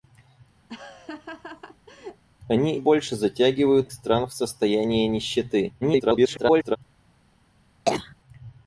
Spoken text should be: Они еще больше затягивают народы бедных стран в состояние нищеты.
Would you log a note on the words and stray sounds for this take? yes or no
yes